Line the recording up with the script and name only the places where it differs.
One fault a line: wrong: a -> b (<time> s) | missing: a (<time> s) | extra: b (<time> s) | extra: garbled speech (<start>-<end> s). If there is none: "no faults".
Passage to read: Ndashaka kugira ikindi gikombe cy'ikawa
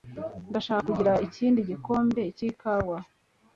no faults